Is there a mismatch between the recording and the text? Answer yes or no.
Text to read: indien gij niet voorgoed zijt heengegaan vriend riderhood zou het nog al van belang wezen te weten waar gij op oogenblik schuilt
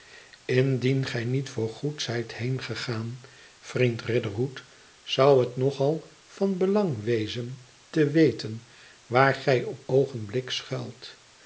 no